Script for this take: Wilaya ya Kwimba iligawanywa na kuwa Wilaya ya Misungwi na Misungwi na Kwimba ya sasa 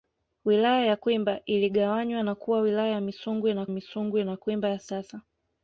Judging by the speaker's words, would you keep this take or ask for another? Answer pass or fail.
pass